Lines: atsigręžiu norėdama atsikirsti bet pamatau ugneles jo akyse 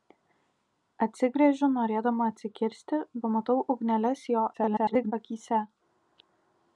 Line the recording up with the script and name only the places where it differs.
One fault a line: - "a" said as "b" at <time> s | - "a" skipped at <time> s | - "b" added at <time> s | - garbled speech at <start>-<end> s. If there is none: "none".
- "bet" skipped at 3.0 s
- garbled speech at 4.5-5.1 s